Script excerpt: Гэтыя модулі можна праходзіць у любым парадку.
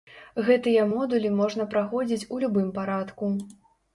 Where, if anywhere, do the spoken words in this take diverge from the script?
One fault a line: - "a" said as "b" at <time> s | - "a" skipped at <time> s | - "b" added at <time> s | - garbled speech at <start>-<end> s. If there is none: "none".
none